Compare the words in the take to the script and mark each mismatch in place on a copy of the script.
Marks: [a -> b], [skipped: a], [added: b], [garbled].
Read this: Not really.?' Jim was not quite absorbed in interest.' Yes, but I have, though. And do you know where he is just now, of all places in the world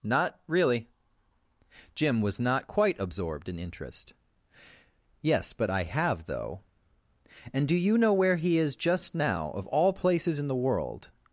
Not really.?' Jim was not quite absorbed in interest.' Yes, but I have, though. And do you know where he is just now, of all places in the world